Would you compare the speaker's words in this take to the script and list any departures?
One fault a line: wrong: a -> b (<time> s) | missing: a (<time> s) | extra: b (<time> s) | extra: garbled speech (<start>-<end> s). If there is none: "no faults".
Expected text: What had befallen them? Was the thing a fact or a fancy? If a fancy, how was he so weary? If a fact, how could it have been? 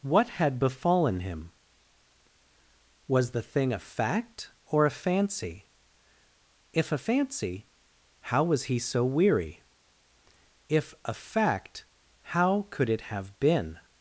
wrong: them -> him (1.2 s)